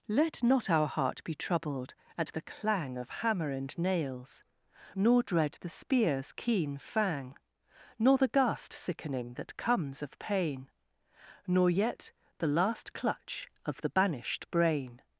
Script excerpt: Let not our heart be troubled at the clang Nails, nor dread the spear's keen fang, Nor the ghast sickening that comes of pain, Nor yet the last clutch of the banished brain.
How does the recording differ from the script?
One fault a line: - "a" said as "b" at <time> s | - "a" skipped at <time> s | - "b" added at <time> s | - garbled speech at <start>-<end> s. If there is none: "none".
- "Of hammer and" added at 3.0 s